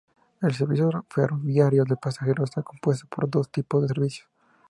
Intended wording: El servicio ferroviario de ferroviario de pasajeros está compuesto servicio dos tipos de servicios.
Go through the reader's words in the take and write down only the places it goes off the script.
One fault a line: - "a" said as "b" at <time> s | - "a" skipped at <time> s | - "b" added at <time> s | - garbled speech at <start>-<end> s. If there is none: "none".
- "ferroviario de" skipped at 1.9 s
- "servicio" said as "por" at 3.1 s